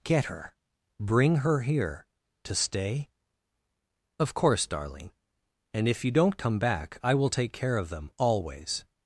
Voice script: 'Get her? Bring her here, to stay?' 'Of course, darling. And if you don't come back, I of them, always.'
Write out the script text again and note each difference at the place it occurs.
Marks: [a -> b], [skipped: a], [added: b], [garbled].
'Get her? Bring her here, to stay?' 'Of course, darling. And if you don't come back, I [added: will take care] of them, always.'